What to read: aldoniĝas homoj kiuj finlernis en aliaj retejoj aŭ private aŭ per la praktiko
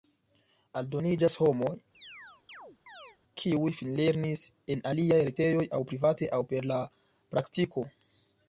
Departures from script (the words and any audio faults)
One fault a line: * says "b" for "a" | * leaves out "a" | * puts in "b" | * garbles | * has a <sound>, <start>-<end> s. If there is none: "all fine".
* has a chirp, 1.9-3.2 s